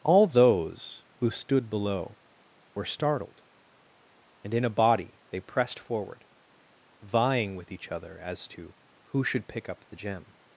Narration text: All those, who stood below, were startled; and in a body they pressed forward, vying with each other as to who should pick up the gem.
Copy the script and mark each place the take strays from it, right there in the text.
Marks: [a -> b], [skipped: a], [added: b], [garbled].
All those, who stood below, were startled; and in a body they pressed forward, vying with each other as to who should pick up the gem.